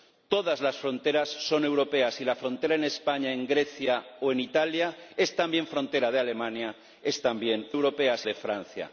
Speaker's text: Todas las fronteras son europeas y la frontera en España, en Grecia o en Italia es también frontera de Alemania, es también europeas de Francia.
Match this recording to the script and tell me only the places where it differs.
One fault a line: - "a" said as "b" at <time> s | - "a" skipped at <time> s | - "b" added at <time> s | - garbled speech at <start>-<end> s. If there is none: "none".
none